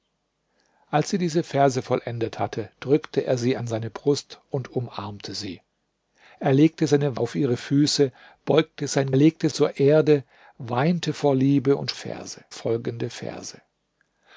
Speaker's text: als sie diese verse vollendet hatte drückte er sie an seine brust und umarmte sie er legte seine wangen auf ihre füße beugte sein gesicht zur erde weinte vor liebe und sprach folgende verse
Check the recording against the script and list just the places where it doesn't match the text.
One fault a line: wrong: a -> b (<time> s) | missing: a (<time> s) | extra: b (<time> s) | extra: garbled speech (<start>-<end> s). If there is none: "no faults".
missing: wangen (7.2 s)
wrong: gesicht -> legte (9.2 s)
wrong: sprach -> verse (11.9 s)